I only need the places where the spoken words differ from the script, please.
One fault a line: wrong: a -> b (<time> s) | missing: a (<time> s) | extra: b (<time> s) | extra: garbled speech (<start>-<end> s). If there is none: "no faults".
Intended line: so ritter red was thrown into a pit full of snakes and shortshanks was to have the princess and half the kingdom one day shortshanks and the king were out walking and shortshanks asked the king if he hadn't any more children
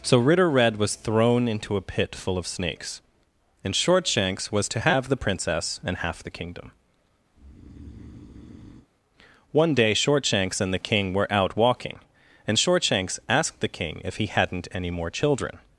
no faults